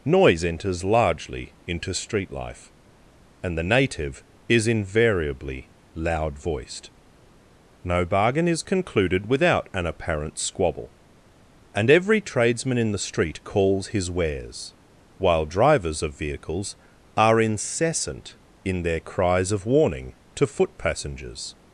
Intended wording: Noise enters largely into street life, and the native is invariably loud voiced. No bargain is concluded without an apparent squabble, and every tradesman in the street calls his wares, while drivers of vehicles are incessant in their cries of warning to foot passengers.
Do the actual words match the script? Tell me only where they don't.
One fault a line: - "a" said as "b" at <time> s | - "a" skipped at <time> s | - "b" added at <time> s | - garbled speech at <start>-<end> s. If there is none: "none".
none